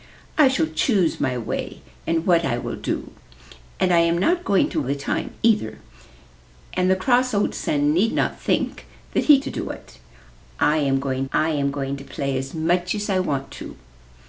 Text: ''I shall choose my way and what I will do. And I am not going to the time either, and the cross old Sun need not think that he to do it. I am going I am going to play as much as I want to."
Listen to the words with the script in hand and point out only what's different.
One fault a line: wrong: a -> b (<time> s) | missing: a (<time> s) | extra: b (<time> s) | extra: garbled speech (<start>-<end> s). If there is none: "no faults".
no faults